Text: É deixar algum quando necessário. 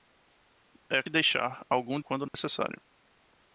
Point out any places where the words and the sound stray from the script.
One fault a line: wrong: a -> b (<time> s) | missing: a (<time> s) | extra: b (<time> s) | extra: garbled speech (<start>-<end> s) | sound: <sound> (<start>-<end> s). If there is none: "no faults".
sound: dropout (2.3-2.3 s)